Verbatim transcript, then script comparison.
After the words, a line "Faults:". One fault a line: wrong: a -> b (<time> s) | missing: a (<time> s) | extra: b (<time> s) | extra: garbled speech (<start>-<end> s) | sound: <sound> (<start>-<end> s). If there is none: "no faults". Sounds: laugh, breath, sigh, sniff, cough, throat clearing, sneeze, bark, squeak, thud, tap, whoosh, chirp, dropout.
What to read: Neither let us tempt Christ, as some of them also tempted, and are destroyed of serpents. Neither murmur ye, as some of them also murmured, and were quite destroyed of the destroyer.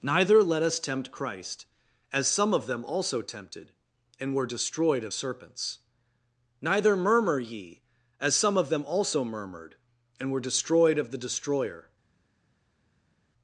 Neither let us tempt Christ, as some of them also tempted, and were destroyed of serpents. Neither murmur ye, as some of them also murmured, and were destroyed of the destroyer.
Faults:
wrong: are -> were (4.3 s)
missing: quite (10.4 s)